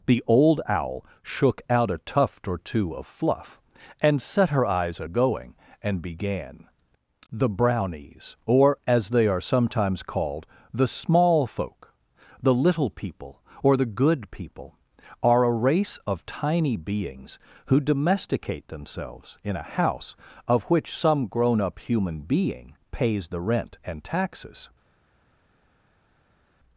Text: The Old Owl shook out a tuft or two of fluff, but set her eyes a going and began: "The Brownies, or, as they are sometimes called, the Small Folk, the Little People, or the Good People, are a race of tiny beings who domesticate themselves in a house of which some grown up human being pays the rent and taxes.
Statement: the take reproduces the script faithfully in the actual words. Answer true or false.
false